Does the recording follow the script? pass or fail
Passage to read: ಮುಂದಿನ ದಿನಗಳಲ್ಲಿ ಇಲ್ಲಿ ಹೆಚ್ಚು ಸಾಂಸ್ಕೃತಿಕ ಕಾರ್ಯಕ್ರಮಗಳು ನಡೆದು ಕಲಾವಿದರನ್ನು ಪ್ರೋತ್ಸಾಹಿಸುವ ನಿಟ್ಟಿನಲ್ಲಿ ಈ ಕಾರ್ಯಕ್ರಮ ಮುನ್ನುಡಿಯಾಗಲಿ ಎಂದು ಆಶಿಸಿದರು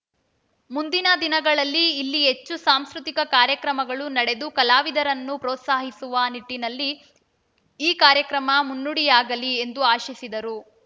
pass